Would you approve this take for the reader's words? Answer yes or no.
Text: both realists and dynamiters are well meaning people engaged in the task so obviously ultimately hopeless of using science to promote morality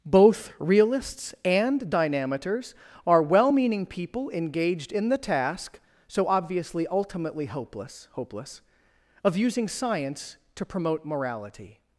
no